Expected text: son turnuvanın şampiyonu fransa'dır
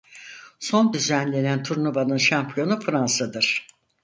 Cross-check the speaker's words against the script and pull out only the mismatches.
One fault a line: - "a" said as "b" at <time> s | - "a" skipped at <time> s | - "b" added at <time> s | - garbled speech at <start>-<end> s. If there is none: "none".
- "düzenlenen" added at 0.9 s